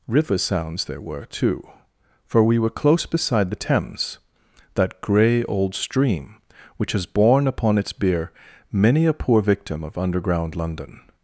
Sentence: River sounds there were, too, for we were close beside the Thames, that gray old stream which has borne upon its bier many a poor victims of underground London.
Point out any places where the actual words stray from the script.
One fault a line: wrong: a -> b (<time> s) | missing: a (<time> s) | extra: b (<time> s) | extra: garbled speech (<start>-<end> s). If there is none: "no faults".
wrong: victims -> victim (9.4 s)